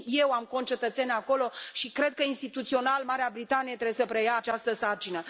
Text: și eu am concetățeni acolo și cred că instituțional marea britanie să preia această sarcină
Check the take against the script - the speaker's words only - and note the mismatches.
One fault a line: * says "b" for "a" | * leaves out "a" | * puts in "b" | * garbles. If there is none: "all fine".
* puts in "trebuie"